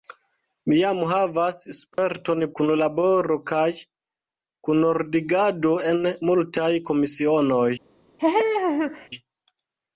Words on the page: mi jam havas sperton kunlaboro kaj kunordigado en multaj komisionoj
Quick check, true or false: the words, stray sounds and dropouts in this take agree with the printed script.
false